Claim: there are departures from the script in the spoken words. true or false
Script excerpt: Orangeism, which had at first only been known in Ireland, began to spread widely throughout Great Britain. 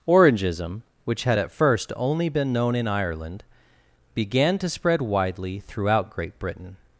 false